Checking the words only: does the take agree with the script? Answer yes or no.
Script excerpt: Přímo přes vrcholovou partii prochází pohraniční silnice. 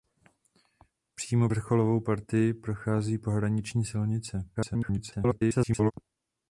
no